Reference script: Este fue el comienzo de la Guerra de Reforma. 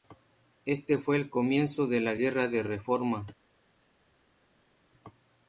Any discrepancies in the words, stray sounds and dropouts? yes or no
no